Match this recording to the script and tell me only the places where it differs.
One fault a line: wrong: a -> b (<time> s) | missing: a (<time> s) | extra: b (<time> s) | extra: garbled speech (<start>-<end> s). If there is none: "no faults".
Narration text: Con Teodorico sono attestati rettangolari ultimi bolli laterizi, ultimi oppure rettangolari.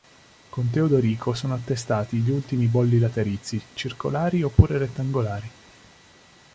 wrong: rettangolari -> gli (2.2 s)
wrong: ultimi -> circolari (3.8 s)